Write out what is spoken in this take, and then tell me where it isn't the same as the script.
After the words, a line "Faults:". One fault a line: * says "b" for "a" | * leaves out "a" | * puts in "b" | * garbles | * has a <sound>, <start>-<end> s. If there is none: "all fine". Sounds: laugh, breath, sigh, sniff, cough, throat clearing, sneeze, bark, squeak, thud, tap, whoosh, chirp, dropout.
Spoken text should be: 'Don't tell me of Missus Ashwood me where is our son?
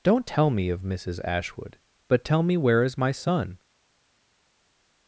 'Don't tell me of Missus Ashwood but tell me where is my son?
Faults:
* puts in "but tell"
* says "my" for "our"